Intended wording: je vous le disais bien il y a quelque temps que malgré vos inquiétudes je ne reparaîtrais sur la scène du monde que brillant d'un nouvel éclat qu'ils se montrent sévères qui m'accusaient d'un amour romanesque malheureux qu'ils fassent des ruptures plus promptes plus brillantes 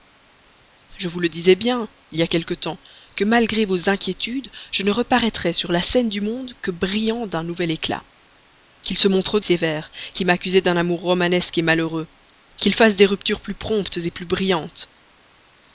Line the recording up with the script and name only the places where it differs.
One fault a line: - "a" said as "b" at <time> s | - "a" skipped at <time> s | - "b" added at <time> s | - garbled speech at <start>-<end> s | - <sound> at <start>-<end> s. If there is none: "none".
none